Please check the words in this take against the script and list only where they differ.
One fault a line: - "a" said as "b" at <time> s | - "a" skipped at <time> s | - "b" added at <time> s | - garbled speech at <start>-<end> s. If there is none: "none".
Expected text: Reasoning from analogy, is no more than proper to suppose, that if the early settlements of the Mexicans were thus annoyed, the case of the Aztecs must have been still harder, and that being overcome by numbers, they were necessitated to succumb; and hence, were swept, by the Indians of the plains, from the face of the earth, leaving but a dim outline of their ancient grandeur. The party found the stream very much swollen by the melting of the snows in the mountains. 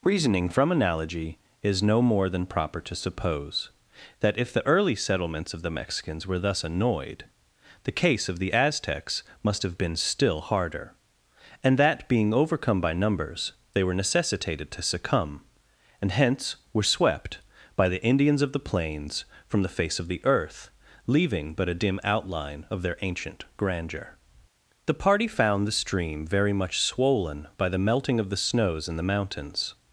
none